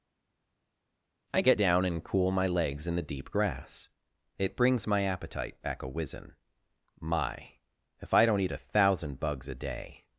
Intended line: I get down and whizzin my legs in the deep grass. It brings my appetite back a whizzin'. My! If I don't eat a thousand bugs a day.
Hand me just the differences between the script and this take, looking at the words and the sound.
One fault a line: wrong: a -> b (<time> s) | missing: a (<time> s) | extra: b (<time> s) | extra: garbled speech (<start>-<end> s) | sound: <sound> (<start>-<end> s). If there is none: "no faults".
wrong: whizzin -> cool (2.0 s)